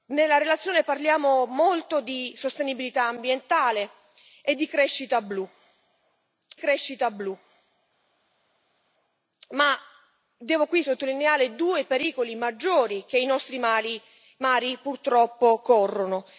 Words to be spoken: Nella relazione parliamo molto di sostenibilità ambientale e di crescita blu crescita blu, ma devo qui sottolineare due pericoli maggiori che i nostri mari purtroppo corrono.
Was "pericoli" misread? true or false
false